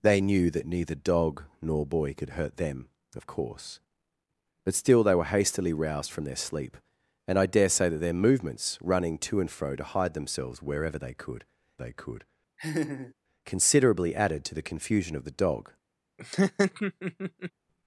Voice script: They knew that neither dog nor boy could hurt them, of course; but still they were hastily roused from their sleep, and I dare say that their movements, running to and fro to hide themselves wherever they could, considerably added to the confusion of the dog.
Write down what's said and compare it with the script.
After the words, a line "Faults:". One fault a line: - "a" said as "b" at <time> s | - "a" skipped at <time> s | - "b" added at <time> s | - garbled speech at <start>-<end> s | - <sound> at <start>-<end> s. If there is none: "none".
They knew that neither dog nor boy could hurt them, of course; but still they were hastily roused from their sleep, and I dare say that their movements, running to and fro to hide themselves wherever they could they could, considerably added to the confusion of the dog.
Faults:
- "they could" added at 11.7 s
- laugh at 12.6-13.1 s
- laugh at 16.2-17.5 s